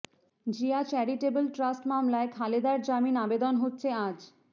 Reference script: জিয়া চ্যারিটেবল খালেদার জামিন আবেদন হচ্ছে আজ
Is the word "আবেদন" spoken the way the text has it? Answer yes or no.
yes